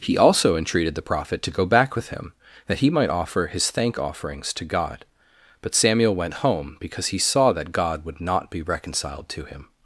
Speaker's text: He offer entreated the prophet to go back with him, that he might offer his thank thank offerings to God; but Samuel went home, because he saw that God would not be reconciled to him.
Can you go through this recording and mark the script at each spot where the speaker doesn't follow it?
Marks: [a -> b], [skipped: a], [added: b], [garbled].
He [offer -> also] entreated the prophet to go back with him, that he might offer his thank [skipped: thank] offerings to God; but Samuel went home, because he saw that God would not be reconciled to him.